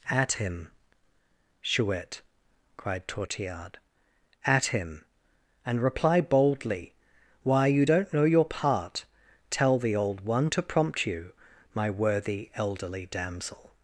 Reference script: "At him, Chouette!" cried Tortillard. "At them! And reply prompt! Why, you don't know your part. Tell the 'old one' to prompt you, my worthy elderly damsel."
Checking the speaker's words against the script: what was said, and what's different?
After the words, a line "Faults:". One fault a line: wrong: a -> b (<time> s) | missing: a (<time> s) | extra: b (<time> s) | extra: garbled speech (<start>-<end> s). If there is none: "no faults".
"At him, Chouette!" cried Tortillard. "At him! And reply boldly! Why, you don't know your part. Tell the 'old one' to prompt you, my worthy elderly damsel."
Faults:
wrong: them -> him (4.7 s)
wrong: prompt -> boldly (6.2 s)